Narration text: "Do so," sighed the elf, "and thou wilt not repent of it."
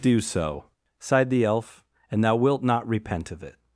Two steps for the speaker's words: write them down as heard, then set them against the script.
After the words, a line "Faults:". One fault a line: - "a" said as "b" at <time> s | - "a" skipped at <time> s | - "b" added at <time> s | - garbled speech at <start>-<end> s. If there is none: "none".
"Do so," sighed the elf, "and thou wilt not repent of it."
Faults:
none